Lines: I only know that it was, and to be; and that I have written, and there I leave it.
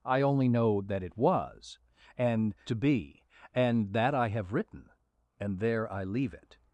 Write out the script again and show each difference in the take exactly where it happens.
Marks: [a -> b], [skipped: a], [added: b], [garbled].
I only know that it was, and to be; and that I have written, and there I leave it.